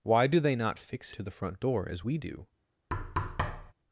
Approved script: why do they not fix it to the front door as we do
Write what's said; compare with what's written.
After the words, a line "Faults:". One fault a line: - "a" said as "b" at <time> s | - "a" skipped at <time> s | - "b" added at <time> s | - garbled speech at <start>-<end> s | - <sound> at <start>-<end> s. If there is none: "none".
why do they not fix to the front door as we do
Faults:
- "it" skipped at 1.1 s
- thud at 2.9-3.7 s